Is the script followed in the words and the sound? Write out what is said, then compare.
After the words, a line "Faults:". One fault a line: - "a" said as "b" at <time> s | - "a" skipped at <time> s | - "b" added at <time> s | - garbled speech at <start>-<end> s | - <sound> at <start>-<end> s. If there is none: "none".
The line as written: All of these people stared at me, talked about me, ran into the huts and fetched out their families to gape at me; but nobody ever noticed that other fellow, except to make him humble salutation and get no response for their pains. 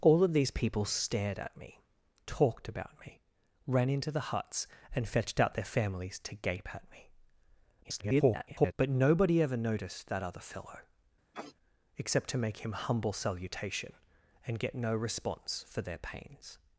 All of these people stared at me, talked about me, ran into the huts and fetched out their families to gape at me; [garbled] but nobody ever noticed that other fellow, except to make him humble salutation and get no response for their pains.
Faults:
- garbled speech at 7.8-8.7 s
- sniff at 11.3-11.6 s